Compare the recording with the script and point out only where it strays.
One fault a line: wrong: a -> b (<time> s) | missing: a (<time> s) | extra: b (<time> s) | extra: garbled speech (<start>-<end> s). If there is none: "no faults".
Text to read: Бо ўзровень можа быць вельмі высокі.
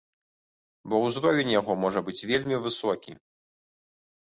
extra: яго (1.6 s)